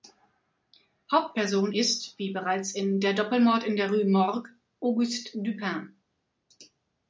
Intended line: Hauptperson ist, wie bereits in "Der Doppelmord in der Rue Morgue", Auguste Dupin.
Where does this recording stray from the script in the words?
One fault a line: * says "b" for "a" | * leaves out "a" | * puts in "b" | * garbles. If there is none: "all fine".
all fine